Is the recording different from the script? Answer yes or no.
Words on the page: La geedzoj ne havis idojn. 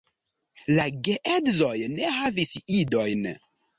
no